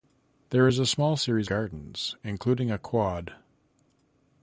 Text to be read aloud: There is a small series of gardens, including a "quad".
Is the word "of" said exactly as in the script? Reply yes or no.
no